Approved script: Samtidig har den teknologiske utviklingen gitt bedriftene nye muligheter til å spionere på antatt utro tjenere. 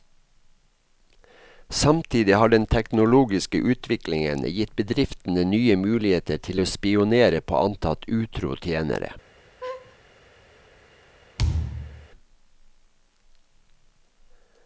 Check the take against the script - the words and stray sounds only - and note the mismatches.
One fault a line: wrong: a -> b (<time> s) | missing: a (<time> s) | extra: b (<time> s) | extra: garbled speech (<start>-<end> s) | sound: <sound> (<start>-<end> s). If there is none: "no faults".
sound: laugh (9.6-10.0 s)
sound: thud (11.4-12.1 s)